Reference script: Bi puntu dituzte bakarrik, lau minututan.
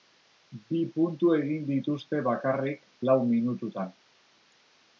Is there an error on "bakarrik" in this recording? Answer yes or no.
no